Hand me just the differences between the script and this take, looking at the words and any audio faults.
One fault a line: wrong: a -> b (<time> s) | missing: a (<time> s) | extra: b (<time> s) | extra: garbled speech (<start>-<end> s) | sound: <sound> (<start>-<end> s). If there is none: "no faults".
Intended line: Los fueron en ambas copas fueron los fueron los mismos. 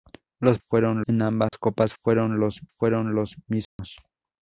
sound: dropout (1.5-1.5 s)
sound: dropout (3.6-3.8 s)